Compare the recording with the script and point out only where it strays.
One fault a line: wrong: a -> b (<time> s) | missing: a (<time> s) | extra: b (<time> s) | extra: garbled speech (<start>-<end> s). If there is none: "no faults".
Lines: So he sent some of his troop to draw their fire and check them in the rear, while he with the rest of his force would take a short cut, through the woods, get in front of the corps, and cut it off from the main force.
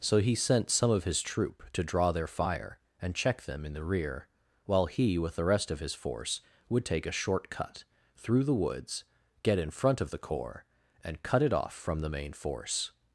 no faults